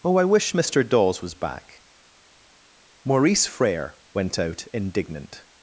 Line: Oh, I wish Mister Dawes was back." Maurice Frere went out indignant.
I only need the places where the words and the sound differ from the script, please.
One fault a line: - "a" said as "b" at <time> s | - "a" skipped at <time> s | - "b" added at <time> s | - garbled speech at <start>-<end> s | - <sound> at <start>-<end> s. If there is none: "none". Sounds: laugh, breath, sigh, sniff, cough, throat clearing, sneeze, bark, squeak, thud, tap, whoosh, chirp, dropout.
none